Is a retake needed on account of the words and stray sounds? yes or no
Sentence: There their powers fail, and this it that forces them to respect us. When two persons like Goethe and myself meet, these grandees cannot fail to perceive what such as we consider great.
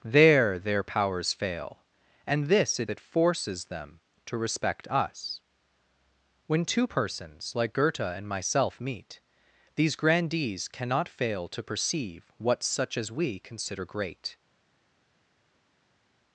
no